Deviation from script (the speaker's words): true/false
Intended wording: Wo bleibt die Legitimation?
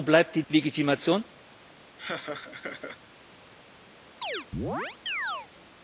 false